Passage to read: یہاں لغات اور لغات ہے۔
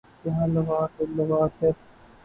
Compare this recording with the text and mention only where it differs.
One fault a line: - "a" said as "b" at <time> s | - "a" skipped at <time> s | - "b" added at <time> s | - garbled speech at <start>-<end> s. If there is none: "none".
none